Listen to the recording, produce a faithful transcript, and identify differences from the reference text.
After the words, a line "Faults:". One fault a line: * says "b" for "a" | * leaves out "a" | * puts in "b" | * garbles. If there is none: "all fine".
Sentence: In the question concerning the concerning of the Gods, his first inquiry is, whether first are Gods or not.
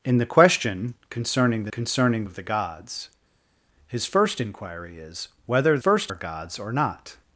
In the question concerning the concerning of the Gods, his first inquiry is, whether first are Gods or not.
Faults:
all fine